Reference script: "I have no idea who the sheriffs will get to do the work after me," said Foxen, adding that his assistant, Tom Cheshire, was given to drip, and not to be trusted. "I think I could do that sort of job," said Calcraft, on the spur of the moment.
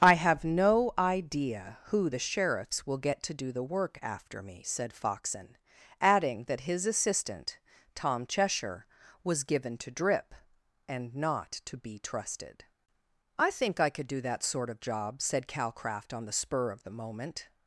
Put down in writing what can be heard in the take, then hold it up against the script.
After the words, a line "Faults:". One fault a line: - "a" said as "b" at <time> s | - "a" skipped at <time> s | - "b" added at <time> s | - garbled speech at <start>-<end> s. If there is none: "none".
"I have no idea who the sheriffs will get to do the work after me," said Foxen, adding that his assistant, Tom Cheshire, was given to drip, and not to be trusted. "I think I could do that sort of job," said Calcraft, on the spur of the moment.
Faults:
none